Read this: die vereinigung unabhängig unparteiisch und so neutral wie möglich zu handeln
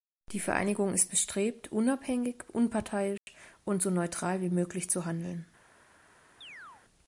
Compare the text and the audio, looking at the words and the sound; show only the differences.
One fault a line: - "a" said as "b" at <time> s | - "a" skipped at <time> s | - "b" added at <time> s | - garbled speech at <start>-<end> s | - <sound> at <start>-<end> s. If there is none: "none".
- "ist bestrebt" added at 0.9 s
- dropout at 3.2-3.3 s
- chirp at 6.4-6.8 s